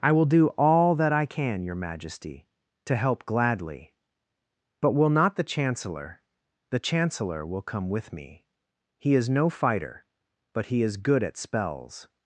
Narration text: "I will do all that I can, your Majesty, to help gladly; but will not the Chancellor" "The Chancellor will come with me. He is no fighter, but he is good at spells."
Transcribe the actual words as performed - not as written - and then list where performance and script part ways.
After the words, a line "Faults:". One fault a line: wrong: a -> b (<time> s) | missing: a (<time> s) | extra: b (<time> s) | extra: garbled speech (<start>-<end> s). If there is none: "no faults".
"I will do all that I can, your Majesty, to help gladly; but will not the Chancellor" "The Chancellor will come with me. He is no fighter, but he is good at spells."
Faults:
no faults